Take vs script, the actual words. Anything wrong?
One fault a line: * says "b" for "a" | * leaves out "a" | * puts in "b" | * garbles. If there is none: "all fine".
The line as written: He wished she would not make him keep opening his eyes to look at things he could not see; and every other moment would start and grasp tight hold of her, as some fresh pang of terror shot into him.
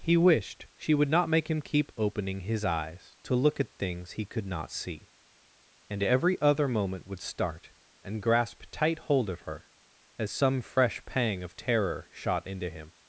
all fine